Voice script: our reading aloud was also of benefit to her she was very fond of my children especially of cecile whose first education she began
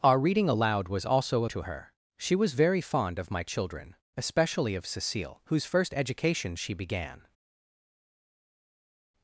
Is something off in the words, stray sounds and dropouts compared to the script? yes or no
yes